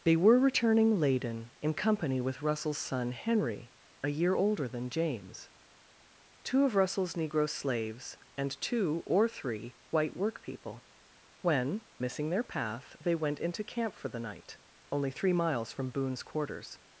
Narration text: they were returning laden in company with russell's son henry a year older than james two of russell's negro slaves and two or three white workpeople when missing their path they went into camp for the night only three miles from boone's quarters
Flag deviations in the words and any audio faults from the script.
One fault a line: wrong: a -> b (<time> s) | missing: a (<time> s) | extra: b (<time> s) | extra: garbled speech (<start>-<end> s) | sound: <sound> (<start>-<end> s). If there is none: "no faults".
no faults